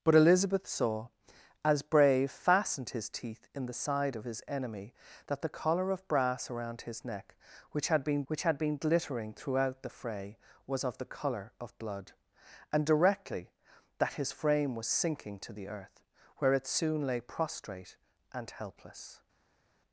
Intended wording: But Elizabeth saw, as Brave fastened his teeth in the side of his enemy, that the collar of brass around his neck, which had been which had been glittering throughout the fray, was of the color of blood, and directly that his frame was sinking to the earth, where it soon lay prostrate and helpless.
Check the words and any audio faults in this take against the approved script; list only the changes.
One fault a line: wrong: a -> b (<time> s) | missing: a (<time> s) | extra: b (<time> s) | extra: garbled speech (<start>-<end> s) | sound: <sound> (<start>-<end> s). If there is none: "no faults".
no faults